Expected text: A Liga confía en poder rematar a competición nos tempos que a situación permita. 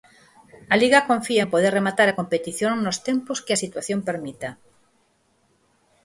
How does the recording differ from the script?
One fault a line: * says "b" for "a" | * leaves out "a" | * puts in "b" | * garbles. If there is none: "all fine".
all fine